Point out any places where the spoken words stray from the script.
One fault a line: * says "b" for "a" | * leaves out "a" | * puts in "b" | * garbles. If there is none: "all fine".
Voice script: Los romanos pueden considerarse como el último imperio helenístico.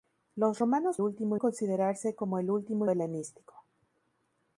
* says "último" for "pueden"
* leaves out "imperio"